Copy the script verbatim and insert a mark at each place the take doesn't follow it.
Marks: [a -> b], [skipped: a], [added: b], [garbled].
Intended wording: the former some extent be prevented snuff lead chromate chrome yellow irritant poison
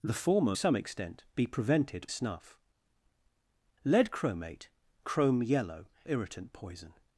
the former some extent be prevented snuff lead chromate chrome yellow irritant poison